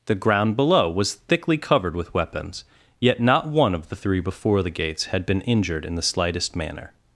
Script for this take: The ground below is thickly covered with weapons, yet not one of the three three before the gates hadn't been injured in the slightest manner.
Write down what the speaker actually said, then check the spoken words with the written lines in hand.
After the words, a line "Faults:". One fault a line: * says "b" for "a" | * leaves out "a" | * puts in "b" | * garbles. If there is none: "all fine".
The ground below was thickly covered with weapons, yet not one of the three before the gates had been injured in the slightest manner.
Faults:
* says "was" for "is"
* leaves out "three"
* says "had" for "hadn't"